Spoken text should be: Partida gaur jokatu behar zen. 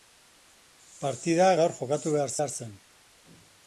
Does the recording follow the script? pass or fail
fail